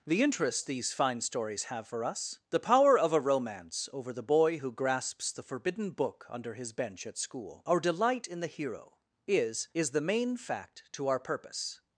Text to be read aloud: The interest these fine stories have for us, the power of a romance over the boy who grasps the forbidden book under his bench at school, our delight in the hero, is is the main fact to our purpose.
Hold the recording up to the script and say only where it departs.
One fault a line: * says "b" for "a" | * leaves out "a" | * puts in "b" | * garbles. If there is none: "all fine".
all fine